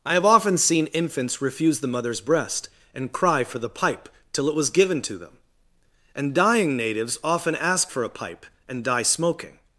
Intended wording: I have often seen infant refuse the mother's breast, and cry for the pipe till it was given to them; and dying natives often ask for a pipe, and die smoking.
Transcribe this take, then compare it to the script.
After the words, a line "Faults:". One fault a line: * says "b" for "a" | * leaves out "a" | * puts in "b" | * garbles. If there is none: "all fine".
I have often seen infants refuse the mother's breast, and cry for the pipe till it was given to them; and dying natives often ask for a pipe, and die smoking.
Faults:
* says "infants" for "infant"